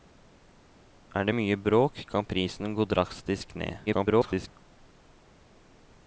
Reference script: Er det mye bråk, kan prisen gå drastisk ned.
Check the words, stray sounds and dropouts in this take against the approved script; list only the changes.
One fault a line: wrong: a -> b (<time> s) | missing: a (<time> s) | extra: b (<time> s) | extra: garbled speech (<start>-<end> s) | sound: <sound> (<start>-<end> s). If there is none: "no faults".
extra: garbled speech (3.9-4.5 s)